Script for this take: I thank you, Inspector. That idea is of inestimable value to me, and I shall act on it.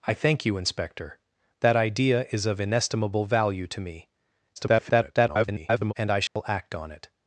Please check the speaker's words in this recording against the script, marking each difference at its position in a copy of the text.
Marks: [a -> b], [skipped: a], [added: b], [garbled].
I thank you, Inspector. That idea is of inestimable value to me, [garbled] and I shall act on it.